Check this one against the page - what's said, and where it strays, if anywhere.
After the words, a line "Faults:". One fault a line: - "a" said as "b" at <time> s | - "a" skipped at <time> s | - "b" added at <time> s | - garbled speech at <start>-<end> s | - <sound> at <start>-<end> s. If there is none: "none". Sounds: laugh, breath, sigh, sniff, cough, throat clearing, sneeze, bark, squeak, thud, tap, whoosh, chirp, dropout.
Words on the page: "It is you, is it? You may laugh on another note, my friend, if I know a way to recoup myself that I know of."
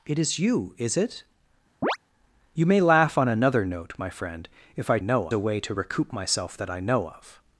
"It is you, is it? You may laugh on another note, my friend, if I know a way to recoup myself that I know of."
Faults:
- chirp at 1.8-2.0 s